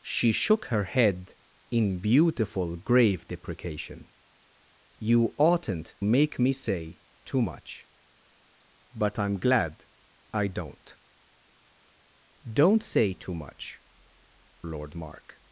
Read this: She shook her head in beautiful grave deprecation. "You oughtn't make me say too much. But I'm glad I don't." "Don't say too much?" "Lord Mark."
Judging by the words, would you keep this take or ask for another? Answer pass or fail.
pass